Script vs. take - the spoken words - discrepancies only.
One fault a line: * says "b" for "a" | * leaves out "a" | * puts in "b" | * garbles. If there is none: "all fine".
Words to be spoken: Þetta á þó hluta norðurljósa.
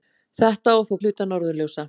all fine